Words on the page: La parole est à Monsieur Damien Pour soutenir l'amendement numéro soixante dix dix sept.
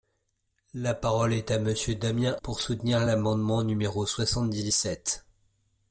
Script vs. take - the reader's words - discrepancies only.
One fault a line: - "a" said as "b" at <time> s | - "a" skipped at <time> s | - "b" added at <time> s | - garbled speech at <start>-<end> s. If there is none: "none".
none